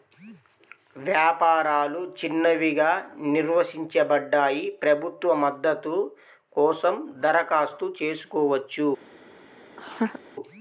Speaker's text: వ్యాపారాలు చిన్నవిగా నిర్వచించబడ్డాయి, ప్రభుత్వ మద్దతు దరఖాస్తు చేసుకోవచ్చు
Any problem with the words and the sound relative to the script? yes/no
yes